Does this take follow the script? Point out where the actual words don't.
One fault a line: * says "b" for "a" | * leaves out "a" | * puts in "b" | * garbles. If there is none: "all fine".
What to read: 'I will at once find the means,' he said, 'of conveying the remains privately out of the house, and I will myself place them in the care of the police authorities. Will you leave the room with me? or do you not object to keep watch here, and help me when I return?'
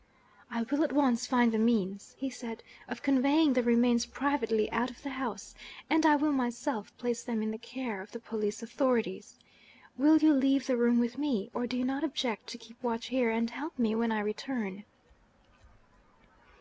all fine